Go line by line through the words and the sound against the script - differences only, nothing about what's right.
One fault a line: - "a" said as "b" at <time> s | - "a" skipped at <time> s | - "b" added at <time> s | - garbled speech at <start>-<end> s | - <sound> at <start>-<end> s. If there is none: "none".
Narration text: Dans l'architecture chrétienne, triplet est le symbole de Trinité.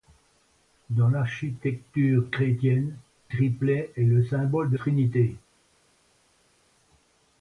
none